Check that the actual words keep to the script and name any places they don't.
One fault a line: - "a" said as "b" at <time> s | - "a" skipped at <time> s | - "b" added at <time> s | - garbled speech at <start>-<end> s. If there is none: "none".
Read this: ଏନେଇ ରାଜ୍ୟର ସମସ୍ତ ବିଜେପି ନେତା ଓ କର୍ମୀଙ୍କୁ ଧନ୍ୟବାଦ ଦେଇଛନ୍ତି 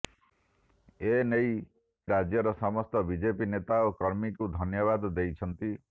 none